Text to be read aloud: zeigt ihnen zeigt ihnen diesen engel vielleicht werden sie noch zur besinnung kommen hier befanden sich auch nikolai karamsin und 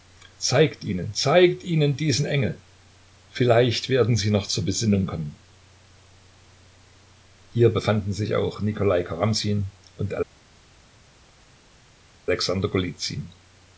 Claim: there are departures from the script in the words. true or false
false